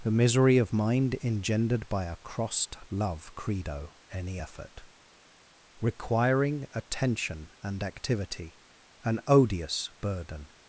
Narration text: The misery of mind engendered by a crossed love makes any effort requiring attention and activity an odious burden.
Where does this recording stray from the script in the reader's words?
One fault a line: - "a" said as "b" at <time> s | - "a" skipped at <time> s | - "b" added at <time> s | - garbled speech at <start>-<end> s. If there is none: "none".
- "makes" said as "credo" at 3.4 s